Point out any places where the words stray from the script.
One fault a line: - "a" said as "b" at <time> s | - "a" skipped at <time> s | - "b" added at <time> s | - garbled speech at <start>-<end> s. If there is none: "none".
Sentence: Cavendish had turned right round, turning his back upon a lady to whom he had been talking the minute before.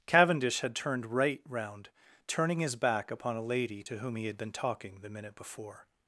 none